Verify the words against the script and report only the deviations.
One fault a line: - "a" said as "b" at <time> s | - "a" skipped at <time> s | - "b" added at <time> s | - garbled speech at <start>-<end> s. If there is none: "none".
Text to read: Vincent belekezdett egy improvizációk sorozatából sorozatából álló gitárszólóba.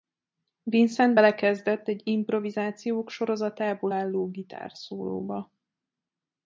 - "sorozatából" skipped at 3.9 s